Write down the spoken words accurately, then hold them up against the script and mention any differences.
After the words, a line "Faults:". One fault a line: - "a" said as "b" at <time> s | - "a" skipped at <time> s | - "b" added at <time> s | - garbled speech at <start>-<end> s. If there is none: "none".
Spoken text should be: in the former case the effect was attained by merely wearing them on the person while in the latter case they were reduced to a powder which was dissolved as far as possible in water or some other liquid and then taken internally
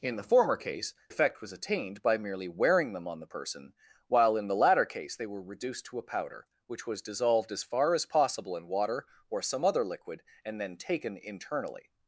in the former case effect was attained by merely wearing them on the person while in the latter case they were reduced to a powder which was dissolved as far as possible in water or some other liquid and then taken internally
Faults:
- "the" skipped at 0.9 s